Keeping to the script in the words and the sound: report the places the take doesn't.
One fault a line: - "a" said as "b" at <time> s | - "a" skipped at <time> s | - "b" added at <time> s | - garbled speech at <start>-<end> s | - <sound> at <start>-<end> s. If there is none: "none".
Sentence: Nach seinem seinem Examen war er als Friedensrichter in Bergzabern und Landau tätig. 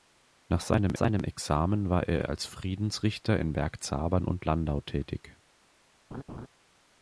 - laugh at 6.1-6.5 s